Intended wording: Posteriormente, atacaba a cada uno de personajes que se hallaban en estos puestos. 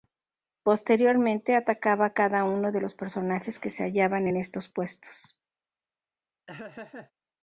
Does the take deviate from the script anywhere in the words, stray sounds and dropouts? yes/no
yes